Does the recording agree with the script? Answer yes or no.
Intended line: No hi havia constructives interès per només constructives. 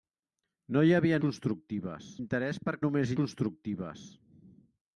yes